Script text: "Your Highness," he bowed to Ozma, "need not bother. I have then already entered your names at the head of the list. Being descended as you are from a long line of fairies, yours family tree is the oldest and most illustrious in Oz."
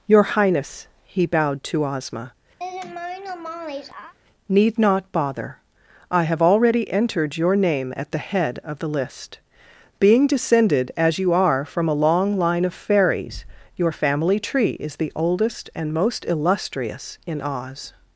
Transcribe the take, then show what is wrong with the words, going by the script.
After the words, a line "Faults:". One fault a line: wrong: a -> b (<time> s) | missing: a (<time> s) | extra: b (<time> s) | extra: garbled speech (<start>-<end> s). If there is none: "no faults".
"Your Highness," he bowed to Ozma, "need not bother. I have already entered your name at the head of the list. Being descended as you are from a long line of fairies, your family tree is the oldest and most illustrious in Oz."
Faults:
missing: then (6.4 s)
wrong: names -> name (7.6 s)
wrong: yours -> your (13.8 s)